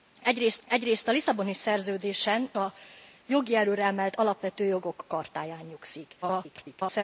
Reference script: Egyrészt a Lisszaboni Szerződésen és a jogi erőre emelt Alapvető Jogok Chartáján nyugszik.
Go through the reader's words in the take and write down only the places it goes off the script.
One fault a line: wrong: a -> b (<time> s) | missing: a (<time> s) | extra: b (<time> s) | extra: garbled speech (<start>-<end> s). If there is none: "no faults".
extra: egyrészt (0.7 s)
missing: és (2.5 s)
extra: garbled speech (6.2-7.0 s)